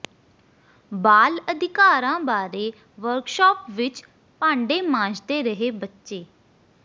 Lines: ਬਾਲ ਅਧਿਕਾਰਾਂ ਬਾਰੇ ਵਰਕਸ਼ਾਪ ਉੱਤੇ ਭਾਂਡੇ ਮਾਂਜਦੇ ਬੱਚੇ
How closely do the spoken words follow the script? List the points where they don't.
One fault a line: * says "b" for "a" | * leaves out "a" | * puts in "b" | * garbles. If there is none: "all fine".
* says "ਵਿੱਚ" for "ਉੱਤੇ"
* puts in "ਰਹੇ"